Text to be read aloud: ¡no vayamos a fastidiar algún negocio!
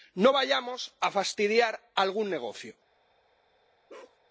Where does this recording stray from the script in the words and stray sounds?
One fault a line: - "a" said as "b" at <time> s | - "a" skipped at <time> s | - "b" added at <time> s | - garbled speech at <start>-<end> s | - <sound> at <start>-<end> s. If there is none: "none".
- bark at 3.9-4.2 s